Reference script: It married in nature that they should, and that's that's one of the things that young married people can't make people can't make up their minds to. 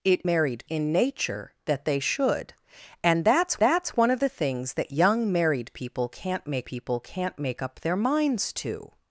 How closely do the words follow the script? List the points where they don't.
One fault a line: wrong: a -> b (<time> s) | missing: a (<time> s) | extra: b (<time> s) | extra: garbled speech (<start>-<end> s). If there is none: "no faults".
no faults